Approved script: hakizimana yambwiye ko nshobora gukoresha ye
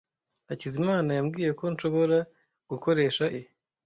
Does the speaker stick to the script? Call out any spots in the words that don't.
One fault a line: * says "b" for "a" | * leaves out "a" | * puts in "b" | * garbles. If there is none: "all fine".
all fine